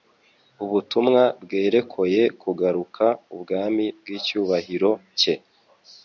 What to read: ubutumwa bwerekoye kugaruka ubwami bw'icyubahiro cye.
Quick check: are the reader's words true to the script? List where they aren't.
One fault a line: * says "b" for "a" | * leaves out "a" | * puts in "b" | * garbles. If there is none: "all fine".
all fine